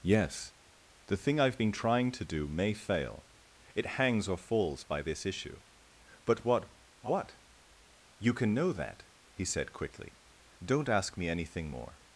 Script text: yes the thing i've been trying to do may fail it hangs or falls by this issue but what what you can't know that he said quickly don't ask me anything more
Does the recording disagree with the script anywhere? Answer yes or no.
yes